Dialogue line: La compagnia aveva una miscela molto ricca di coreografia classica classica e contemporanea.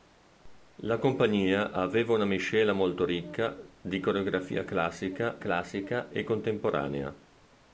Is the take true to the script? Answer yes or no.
yes